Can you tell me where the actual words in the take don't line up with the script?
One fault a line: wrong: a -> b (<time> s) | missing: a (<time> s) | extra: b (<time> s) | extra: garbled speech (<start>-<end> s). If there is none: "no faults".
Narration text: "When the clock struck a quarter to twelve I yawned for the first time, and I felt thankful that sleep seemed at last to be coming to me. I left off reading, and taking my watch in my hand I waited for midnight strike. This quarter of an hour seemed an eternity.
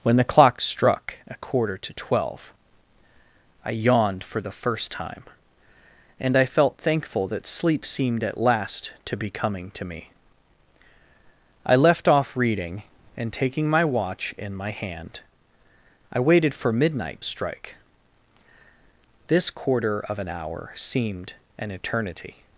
no faults